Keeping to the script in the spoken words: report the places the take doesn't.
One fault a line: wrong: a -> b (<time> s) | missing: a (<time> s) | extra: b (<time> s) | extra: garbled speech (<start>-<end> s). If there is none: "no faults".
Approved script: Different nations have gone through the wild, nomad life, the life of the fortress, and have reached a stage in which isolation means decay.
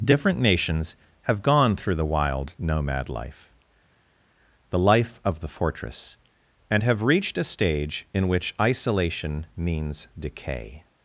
no faults